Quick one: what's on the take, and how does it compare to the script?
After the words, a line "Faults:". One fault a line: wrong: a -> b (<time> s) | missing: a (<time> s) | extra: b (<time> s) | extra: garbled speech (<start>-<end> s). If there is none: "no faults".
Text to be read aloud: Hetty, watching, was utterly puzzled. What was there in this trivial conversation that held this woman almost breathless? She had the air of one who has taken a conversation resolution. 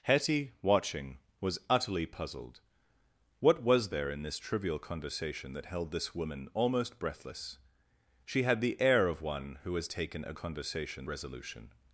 Hetty, watching, was utterly puzzled. What was there in this trivial conversation that held this woman almost breathless? She had the air of one who has taken a conversation resolution.
Faults:
no faults